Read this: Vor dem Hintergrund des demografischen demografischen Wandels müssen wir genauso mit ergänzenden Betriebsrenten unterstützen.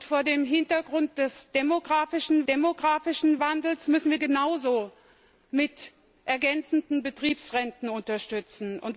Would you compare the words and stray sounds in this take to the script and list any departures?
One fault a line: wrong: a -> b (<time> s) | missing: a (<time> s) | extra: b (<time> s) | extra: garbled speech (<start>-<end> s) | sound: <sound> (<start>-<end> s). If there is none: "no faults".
no faults